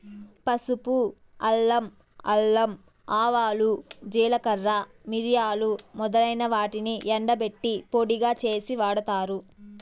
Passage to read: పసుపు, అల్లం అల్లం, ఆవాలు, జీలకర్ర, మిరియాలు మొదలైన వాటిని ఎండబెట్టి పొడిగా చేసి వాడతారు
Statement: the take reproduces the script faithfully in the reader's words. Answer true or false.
true